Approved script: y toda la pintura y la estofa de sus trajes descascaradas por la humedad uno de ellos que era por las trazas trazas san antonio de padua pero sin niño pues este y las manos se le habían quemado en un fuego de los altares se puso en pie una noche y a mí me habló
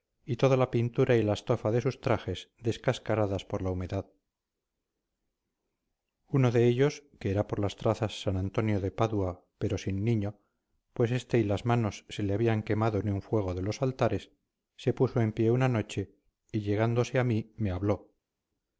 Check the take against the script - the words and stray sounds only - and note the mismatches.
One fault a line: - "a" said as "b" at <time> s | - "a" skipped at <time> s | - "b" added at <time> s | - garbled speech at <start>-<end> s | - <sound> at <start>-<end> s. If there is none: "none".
- "trazas" skipped at 8.2 s
- "llegándose" added at 16.6 s